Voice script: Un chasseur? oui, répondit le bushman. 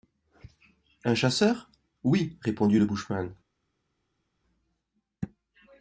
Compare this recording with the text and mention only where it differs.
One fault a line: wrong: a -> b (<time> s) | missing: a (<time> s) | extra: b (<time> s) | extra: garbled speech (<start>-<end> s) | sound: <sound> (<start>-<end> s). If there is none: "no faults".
no faults